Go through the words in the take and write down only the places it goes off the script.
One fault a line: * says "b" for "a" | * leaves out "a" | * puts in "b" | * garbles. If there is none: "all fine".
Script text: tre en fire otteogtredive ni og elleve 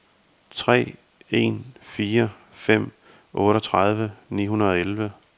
* puts in "fem"
* puts in "hundrede"